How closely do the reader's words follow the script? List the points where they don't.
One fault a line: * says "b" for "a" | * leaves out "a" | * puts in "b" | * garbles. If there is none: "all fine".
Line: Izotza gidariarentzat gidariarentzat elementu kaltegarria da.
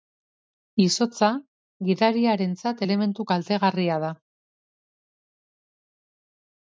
* leaves out "gidariarentzat"